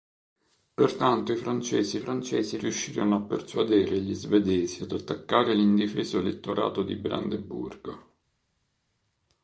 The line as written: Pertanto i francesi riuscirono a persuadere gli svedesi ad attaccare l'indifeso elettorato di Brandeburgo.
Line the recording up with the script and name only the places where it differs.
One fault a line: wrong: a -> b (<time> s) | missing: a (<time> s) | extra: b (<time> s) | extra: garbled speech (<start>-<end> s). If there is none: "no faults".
extra: francesi (2.0 s)